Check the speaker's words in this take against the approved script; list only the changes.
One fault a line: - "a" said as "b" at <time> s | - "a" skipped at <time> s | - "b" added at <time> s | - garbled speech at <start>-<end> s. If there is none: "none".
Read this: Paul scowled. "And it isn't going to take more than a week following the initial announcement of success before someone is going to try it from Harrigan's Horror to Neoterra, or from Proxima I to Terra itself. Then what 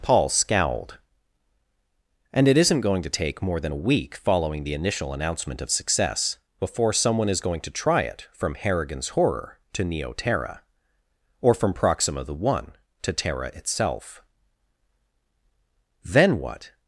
- "I" said as "the one" at 12.2 s